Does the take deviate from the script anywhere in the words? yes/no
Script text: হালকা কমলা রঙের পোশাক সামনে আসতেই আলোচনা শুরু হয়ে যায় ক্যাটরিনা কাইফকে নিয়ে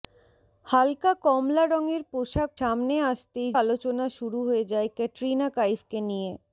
no